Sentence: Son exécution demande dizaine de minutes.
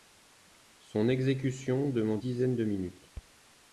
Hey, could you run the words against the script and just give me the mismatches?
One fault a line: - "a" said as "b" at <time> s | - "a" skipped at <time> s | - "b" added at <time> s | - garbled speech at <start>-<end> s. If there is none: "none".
none